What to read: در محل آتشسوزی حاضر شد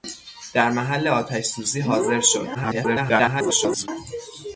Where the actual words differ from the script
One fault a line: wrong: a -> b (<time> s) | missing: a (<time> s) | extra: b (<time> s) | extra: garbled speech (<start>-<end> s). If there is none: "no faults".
extra: garbled speech (2.5-3.9 s)